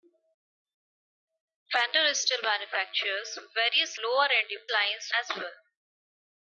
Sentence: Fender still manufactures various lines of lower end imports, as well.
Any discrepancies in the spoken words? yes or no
yes